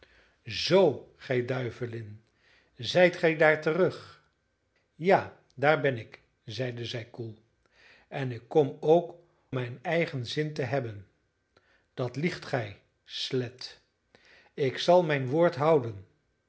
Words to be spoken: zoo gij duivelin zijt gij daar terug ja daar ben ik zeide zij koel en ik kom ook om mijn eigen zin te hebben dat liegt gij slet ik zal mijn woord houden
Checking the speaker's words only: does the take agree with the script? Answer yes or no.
no